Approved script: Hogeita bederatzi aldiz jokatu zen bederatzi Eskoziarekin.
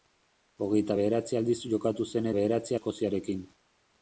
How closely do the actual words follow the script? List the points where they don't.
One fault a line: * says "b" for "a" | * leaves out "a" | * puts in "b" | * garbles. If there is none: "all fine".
all fine